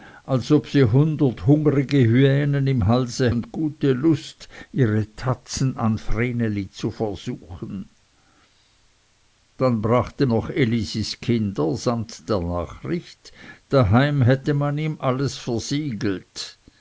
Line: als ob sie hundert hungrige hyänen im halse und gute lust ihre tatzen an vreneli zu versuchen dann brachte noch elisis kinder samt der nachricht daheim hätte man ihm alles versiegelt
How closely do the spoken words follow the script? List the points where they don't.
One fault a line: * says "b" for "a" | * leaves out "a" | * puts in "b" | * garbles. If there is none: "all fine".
all fine